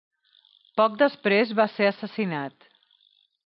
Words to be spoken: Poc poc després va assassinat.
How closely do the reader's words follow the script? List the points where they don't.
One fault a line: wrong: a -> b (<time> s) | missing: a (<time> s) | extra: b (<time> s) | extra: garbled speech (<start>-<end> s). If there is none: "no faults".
missing: poc (0.9 s)
extra: ser (1.8 s)